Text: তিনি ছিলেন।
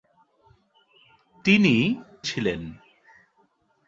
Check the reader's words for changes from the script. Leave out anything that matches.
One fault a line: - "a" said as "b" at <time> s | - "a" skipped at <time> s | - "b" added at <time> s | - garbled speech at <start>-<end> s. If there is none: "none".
none